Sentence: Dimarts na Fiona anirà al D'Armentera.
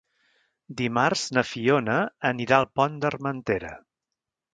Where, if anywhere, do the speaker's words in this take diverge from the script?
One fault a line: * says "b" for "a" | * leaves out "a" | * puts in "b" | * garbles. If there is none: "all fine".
* puts in "Pont"